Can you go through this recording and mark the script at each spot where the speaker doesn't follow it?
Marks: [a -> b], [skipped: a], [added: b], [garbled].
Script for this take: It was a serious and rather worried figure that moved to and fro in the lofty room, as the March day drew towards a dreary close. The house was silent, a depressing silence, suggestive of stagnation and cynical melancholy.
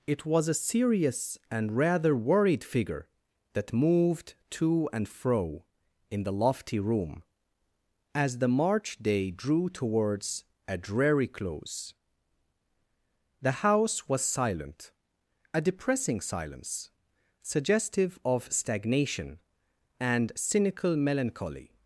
It was a serious and rather worried figure that moved to and fro in the lofty room, as the March day drew towards a dreary close. The house was silent, a depressing silence, suggestive of stagnation and cynical melancholy.